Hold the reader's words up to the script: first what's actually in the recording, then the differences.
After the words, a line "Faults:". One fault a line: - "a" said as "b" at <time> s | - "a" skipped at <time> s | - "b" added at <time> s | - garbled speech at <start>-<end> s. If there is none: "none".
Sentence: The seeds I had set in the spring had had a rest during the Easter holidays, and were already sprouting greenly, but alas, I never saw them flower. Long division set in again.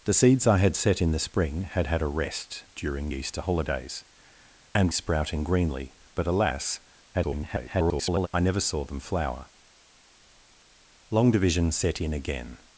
The seeds I had set in the spring had had a rest during Easter holidays, and sprouting greenly, but alas, [garbled] I never saw them flower. Long division set in again.
Faults:
- "the" skipped at 3.1 s
- "were already" skipped at 4.9 s
- garbled speech at 7.1-8.3 s